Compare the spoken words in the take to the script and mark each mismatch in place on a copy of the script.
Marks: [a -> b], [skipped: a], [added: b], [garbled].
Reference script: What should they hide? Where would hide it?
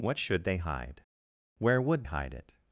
What should they hide? Where would hide it?